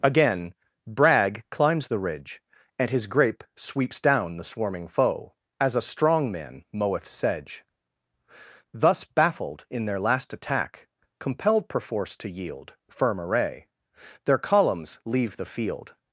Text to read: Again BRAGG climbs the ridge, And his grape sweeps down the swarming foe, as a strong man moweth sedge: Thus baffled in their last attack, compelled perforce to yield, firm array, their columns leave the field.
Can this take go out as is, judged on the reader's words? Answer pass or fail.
pass